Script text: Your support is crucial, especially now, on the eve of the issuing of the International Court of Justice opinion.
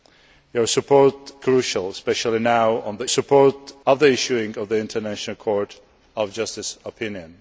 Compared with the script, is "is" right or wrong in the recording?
wrong